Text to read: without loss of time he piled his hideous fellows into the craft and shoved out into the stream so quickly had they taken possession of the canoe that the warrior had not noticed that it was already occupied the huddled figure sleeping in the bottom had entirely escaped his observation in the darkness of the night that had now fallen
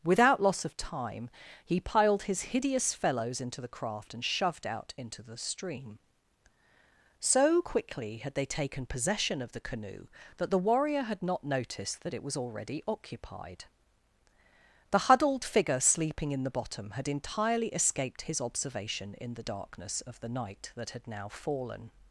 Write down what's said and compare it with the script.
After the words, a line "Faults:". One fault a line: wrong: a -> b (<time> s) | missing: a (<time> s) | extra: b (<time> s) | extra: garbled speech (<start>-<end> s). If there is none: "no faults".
without loss of time he piled his hideous fellows into the craft and shoved out into the stream so quickly had they taken possession of the canoe that the warrior had not noticed that it was already occupied the huddled figure sleeping in the bottom had entirely escaped his observation in the darkness of the night that had now fallen
Faults:
no faults